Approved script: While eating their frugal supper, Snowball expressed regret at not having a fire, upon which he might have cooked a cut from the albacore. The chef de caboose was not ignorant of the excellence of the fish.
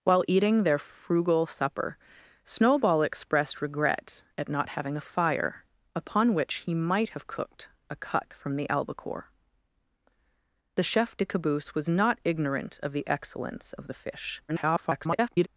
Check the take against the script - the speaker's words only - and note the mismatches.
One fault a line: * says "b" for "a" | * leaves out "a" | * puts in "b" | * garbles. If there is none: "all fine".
* garbles